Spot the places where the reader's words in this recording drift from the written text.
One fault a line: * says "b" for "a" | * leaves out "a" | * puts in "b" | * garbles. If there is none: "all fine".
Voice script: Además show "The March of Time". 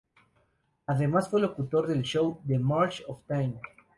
* puts in "fue locutor del"